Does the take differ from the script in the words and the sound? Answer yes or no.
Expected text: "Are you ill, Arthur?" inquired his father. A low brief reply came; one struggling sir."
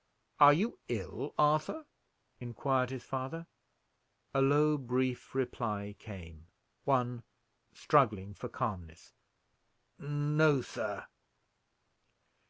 yes